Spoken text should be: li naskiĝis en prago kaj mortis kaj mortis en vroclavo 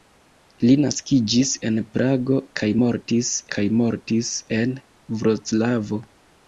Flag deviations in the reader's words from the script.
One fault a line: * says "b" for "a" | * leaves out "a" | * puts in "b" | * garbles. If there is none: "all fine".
all fine